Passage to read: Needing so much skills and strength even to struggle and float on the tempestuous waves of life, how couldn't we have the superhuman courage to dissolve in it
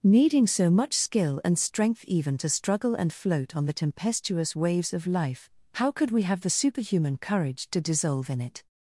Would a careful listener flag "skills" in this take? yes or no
yes